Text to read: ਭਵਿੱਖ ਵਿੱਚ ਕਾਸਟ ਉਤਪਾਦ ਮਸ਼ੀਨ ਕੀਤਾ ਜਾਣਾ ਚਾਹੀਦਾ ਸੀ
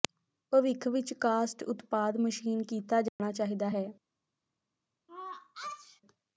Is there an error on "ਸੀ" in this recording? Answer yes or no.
yes